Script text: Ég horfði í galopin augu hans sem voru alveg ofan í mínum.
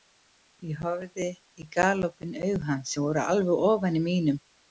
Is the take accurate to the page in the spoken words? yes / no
yes